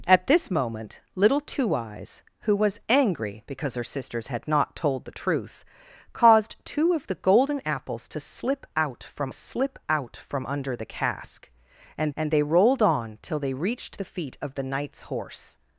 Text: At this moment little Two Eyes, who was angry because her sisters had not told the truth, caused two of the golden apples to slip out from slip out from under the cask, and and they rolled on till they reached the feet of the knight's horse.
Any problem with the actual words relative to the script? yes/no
no